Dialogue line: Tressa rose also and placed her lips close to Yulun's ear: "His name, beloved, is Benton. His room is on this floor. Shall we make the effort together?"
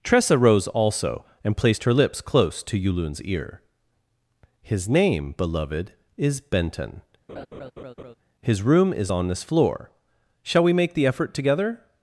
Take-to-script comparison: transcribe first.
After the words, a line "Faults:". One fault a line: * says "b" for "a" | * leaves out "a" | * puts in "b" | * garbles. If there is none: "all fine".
Tressa rose also and placed her lips close to Yulun's ear: "His name, beloved, is Benton. His room is on this floor. Shall we make the effort together?"
Faults:
all fine